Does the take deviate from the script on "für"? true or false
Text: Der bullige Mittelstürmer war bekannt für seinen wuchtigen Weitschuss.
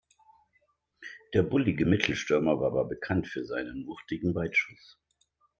false